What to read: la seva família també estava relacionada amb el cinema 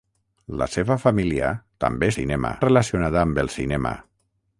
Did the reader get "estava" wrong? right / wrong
wrong